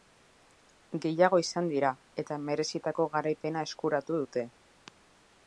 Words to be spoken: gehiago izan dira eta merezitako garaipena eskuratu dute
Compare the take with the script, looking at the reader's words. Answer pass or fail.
pass